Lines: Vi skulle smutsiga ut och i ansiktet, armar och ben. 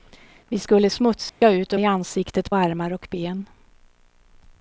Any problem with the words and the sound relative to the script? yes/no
yes